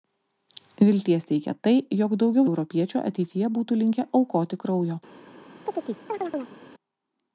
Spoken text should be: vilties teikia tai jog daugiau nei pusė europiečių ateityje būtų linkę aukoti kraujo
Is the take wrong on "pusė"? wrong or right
wrong